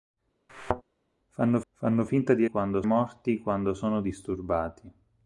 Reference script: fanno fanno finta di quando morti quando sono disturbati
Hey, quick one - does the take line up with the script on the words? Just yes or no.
yes